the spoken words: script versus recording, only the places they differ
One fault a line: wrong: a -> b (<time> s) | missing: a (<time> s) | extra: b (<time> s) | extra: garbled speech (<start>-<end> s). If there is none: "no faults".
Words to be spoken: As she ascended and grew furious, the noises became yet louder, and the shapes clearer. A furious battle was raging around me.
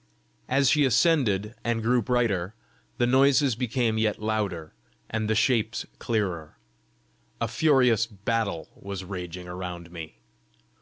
wrong: furious -> brighter (2.0 s)